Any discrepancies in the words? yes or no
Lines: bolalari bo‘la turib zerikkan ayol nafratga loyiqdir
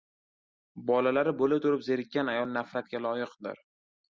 no